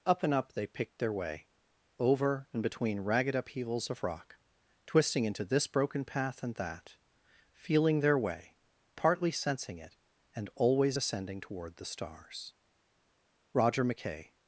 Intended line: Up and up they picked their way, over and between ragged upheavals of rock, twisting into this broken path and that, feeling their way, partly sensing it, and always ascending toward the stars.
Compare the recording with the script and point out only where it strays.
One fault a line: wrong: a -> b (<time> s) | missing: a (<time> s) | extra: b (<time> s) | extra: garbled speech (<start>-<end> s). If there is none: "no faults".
extra: Roger McKay (13.5 s)